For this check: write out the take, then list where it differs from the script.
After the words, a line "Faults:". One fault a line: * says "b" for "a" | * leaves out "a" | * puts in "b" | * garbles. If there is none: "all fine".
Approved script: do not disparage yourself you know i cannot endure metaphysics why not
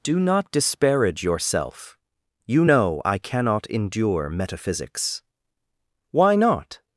do not disparage yourself you know i cannot endure metaphysics why not
Faults:
all fine